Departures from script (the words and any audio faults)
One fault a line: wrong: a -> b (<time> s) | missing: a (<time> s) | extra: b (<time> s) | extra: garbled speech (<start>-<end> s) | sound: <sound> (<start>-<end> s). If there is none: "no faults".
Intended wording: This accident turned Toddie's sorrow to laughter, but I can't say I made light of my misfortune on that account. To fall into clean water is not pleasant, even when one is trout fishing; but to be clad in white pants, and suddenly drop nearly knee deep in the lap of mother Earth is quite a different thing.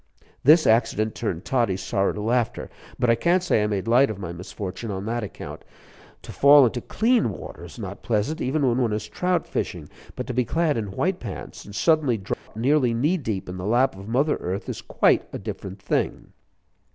sound: dropout (12.3-12.5 s)